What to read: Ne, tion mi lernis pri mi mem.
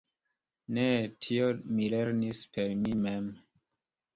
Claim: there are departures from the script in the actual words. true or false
true